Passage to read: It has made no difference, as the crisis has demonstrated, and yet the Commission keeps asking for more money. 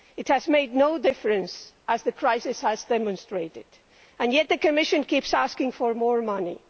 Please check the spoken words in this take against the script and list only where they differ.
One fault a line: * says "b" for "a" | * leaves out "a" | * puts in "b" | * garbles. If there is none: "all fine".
all fine